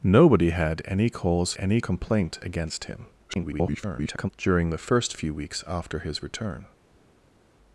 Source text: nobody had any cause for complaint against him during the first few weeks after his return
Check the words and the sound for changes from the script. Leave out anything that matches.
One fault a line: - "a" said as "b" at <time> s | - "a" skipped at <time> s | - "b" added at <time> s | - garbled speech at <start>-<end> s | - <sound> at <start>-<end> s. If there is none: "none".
- "for" said as "any" at 1.6 s
- garbled speech at 3.3-4.3 s